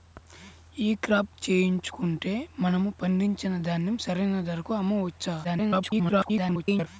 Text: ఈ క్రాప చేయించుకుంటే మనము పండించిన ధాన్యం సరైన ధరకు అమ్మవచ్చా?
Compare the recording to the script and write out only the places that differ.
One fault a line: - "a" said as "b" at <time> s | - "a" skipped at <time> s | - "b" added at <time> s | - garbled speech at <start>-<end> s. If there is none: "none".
- garbled speech at 5.4-6.9 s